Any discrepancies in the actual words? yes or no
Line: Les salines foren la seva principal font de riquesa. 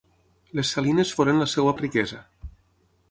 yes